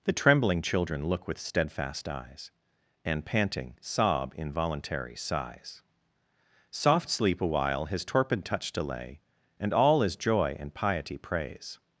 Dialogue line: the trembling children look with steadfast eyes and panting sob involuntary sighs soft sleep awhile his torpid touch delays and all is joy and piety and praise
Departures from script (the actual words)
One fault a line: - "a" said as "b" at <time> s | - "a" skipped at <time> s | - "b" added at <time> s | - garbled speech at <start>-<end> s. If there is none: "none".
- "delays" said as "delay" at 8.7 s
- "and" skipped at 11.2 s